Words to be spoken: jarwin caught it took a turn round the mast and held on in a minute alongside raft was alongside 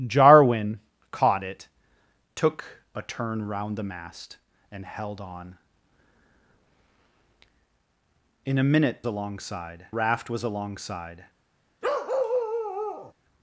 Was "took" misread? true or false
false